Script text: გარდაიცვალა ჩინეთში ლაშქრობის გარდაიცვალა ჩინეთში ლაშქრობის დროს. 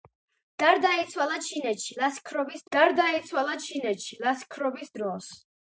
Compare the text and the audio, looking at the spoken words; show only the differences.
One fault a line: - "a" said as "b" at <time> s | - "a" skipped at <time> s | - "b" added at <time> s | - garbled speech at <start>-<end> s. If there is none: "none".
none